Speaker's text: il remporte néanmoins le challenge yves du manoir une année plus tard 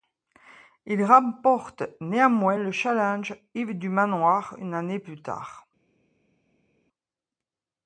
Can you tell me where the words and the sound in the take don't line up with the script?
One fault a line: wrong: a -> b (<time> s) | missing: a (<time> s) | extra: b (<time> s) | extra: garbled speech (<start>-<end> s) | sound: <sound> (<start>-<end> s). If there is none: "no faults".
no faults